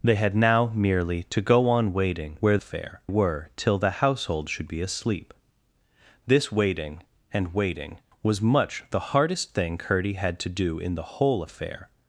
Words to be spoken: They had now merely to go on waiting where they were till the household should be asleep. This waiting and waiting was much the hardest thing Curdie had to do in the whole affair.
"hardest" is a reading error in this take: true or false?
false